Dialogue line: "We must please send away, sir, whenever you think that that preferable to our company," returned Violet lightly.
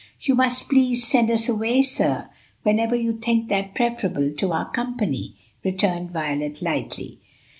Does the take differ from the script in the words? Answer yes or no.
yes